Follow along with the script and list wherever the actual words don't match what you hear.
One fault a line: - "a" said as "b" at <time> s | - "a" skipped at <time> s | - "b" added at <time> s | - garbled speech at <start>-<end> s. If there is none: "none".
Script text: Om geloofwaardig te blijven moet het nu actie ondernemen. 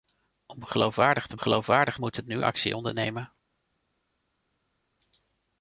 - "blijven" said as "geloofwaardig" at 1.4 s